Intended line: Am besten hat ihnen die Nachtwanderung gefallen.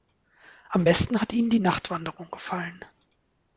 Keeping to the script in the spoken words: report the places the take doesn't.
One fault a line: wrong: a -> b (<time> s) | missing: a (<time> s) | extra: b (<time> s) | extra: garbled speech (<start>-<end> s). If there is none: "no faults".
no faults